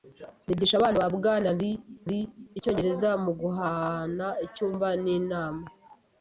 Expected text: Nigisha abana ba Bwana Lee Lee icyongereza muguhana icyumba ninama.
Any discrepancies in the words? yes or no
no